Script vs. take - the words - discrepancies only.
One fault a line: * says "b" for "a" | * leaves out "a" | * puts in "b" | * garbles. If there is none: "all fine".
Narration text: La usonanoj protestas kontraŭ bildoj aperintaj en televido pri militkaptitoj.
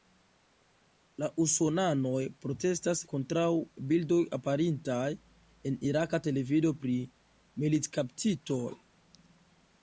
* puts in "iraka"